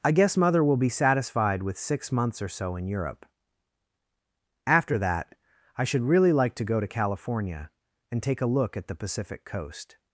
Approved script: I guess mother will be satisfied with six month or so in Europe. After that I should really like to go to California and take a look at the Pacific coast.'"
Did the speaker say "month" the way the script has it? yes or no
no